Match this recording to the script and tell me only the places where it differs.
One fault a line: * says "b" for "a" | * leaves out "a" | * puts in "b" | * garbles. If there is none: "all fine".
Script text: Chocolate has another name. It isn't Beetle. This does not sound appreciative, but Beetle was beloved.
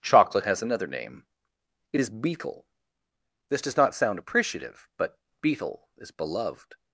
* says "is" for "isn't"
* says "is" for "was"